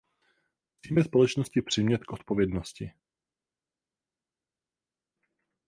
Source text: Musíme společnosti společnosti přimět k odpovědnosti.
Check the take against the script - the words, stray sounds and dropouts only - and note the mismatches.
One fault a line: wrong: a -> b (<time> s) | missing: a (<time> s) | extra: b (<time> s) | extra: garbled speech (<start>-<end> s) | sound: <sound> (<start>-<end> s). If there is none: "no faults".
missing: společnosti (1.6 s)